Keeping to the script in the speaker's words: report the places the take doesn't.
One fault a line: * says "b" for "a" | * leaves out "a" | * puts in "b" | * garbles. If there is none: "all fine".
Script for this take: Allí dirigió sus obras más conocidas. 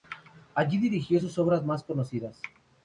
all fine